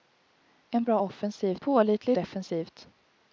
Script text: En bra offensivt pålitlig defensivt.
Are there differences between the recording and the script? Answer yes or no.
no